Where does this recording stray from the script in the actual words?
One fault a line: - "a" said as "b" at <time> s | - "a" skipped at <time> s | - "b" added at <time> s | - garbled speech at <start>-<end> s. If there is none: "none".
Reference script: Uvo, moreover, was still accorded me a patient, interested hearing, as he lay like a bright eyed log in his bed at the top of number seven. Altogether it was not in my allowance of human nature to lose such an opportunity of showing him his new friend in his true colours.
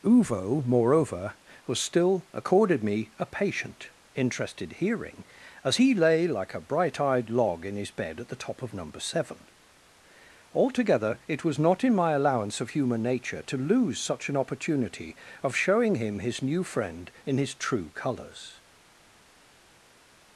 none